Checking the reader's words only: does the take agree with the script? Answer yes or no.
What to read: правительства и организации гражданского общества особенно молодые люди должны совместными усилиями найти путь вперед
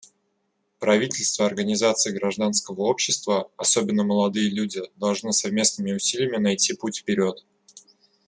yes